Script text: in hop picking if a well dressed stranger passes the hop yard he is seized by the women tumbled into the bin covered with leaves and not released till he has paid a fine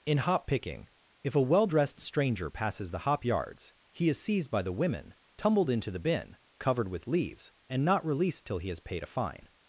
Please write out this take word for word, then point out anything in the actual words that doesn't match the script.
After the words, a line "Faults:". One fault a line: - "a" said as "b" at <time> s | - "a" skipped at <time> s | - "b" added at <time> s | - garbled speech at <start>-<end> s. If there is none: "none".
in hop picking if a well dressed stranger passes the hop yards he is seized by the women tumbled into the bin covered with leaves and not released till he has paid a fine
Faults:
- "yard" said as "yards" at 3.2 s